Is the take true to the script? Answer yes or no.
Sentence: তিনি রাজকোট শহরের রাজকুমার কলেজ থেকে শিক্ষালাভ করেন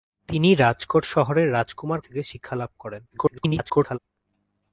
no